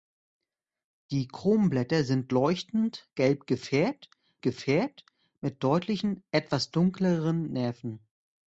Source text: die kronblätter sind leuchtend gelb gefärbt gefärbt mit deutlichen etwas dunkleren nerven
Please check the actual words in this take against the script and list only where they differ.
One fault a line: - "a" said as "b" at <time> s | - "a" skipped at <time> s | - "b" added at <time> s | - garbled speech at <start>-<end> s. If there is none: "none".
none